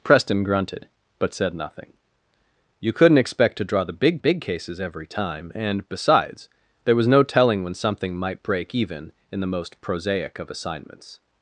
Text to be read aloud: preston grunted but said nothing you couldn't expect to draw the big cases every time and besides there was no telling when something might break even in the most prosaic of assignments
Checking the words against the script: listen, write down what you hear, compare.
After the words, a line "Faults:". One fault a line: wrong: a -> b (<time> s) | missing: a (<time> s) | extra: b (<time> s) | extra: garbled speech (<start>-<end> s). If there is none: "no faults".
preston grunted but said nothing you couldn't expect to draw the big big cases every time and besides there was no telling when something might break even in the most prosaic of assignments
Faults:
extra: big (4.2 s)